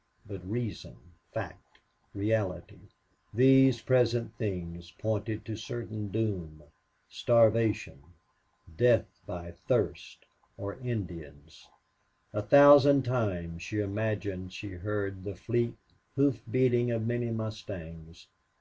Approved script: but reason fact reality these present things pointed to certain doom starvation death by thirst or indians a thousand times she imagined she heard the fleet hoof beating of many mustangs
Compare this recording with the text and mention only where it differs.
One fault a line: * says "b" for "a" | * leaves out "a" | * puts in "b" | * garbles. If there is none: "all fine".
all fine